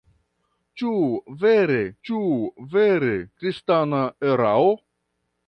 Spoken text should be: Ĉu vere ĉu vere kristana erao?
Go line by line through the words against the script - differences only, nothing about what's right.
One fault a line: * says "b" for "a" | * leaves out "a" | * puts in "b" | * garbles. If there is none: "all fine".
all fine